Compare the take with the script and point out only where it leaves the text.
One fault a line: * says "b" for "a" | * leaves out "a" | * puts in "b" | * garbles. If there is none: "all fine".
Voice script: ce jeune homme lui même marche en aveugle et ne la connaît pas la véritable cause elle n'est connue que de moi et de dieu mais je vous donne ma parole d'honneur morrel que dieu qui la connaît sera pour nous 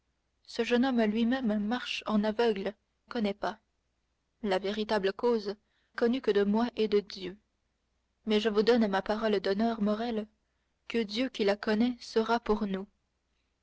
* leaves out "et ne la"
* leaves out "elle n'est"